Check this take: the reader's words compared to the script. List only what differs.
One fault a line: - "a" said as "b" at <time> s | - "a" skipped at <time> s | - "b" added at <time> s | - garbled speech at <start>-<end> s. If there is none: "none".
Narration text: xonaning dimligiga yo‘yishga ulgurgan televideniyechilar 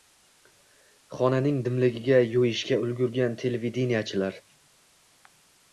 none